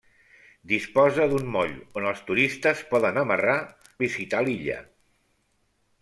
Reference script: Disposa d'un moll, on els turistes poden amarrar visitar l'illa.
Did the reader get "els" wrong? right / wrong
right